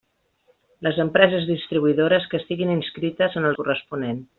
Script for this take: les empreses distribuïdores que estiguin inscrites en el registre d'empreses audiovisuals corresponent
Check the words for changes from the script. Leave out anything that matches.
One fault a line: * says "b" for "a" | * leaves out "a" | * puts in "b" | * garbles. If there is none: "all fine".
* leaves out "registre d'empreses audiovisuals"